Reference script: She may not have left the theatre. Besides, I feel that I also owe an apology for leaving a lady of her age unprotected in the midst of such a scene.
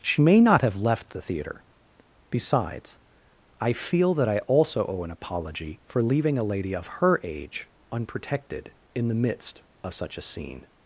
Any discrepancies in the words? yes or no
no